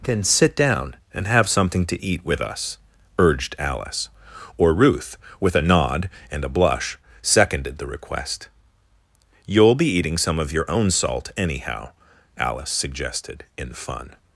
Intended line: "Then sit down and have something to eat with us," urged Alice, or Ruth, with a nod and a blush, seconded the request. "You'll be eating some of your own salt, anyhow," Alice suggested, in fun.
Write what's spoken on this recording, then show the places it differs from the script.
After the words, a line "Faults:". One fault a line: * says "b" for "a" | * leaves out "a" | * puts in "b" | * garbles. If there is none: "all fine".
"Then sit down and have something to eat with us," urged Alice, or Ruth, with a nod and a blush, seconded the request. "You'll be eating some of your own salt, anyhow," Alice suggested, in fun.
Faults:
all fine